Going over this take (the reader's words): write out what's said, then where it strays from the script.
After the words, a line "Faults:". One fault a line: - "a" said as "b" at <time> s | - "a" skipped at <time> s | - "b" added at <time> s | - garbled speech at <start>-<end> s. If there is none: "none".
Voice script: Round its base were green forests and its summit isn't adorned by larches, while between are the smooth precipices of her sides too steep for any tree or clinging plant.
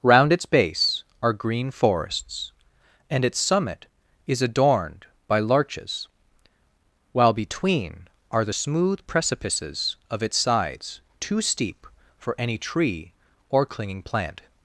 Round its base are green forests and its summit is adorned by larches, while between are the smooth precipices of its sides too steep for any tree or clinging plant.
Faults:
- "were" said as "are" at 1.2 s
- "isn't" said as "is" at 4.3 s
- "her" said as "its" at 10.2 s